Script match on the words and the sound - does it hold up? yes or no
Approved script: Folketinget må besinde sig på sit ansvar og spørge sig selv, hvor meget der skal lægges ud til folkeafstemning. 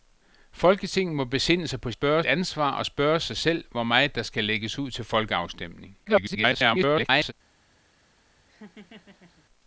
no